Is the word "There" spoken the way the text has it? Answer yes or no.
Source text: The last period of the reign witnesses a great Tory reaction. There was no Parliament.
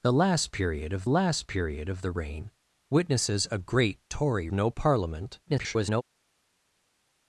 no